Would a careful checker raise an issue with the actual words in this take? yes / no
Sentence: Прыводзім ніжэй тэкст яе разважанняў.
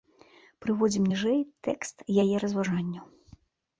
no